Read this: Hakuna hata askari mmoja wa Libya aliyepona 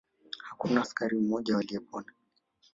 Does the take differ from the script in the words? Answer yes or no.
yes